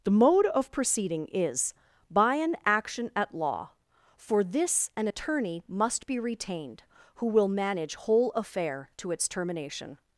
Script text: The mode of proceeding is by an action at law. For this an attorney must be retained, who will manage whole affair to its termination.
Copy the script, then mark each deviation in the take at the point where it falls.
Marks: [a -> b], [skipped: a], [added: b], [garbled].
The mode of proceeding is by an action at law. For this an attorney must be retained, who will manage whole affair to its termination.